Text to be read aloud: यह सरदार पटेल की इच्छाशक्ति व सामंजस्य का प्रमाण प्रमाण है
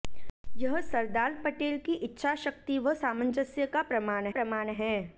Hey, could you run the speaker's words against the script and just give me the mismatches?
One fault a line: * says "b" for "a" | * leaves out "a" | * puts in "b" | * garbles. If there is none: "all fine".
all fine